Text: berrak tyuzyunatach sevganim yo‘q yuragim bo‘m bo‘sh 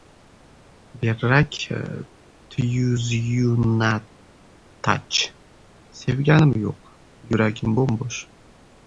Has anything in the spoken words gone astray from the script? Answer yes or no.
no